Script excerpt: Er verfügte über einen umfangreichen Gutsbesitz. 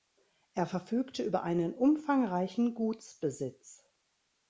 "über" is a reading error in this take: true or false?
false